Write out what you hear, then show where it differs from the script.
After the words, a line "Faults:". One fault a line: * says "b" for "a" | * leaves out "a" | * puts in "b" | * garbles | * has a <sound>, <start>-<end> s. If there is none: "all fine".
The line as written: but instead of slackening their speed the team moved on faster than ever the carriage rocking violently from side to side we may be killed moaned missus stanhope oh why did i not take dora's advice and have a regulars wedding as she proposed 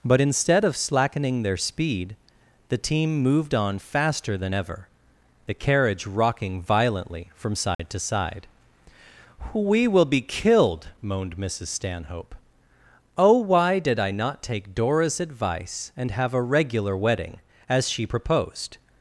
but instead of slackening their speed the team moved on faster than ever the carriage rocking violently from side to side we will be killed moaned missus stanhope oh why did i not take dora's advice and have a regular wedding as she proposed
Faults:
* has a dropout, 7.7-7.8 s
* says "will" for "may"
* says "regular" for "regulars"